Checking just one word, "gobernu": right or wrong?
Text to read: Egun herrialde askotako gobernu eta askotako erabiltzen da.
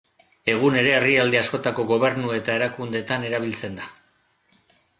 right